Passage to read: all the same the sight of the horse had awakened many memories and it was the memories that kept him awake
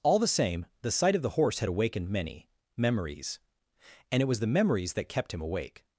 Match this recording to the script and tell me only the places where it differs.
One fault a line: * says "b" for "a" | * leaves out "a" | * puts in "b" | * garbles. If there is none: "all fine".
all fine